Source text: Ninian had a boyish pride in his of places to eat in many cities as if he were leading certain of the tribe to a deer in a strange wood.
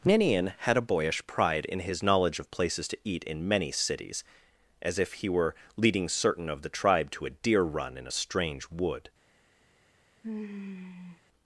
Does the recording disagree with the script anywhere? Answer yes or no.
yes